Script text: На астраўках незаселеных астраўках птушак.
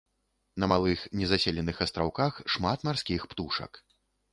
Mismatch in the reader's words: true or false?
true